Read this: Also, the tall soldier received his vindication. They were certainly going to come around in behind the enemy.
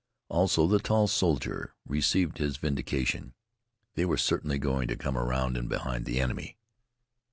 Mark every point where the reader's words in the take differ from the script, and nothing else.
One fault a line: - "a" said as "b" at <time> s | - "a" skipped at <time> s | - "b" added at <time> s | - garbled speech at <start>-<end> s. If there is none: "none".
none